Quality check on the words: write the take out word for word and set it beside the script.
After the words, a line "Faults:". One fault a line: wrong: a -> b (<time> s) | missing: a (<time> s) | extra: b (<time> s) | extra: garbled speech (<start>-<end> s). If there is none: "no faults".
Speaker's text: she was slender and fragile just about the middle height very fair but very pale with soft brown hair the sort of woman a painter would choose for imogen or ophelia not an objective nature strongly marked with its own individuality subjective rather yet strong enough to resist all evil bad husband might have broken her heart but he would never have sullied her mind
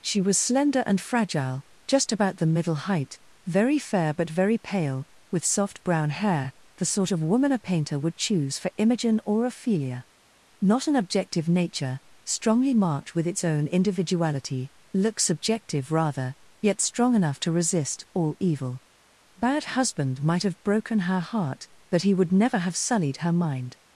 she was slender and fragile just about the middle height very fair but very pale with soft brown hair the sort of woman a painter would choose for imogen or ophelia not an objective nature strongly marked with its own individuality look subjective rather yet strong enough to resist all evil bad husband might have broken her heart but he would never have sullied her mind
Faults:
extra: look (14.9 s)